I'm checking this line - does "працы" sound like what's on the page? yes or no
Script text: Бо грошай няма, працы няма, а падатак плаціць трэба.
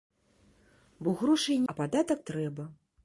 no